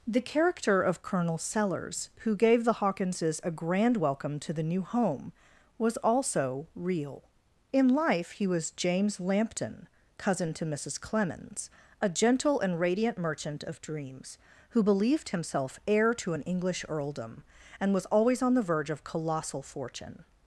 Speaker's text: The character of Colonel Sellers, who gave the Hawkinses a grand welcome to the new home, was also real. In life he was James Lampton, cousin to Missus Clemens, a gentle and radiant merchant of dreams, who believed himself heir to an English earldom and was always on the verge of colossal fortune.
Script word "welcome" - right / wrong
right